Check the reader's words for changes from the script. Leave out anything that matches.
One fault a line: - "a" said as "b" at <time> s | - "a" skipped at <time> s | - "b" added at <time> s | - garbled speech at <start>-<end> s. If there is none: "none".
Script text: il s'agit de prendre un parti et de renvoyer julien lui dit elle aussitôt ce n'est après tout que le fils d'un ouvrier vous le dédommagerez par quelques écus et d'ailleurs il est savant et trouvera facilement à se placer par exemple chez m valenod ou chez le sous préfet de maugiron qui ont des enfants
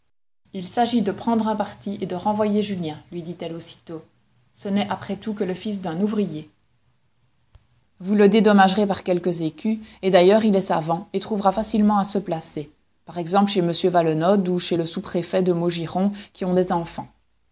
none